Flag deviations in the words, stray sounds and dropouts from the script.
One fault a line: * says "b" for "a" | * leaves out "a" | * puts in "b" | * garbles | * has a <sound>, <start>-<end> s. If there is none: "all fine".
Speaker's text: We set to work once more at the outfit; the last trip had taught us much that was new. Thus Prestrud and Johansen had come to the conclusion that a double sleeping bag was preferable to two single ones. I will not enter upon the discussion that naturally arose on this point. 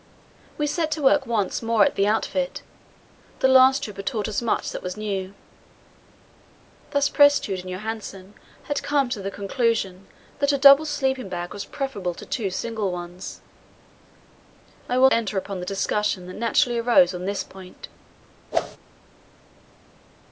* leaves out "not"
* has a whoosh, 18.5-18.8 s